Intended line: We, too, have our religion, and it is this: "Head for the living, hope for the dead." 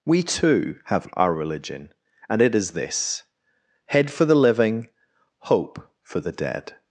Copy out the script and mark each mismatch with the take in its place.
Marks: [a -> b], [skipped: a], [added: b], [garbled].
We, too, have our religion, and it is this: "Head for the living, hope for the dead."